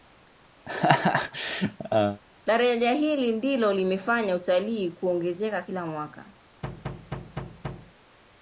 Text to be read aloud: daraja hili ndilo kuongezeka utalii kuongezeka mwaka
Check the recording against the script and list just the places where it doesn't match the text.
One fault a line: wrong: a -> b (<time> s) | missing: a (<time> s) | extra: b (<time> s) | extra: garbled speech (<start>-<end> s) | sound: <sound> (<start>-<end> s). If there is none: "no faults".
sound: laugh (0.7-2.2 s)
wrong: kuongezeka -> limefanya (3.7 s)
extra: kila (5.6 s)
sound: thud (6.6-7.9 s)